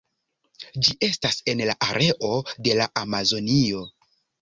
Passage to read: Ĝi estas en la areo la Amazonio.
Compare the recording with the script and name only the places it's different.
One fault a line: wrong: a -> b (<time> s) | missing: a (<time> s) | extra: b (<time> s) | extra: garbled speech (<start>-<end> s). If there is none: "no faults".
extra: de (2.7 s)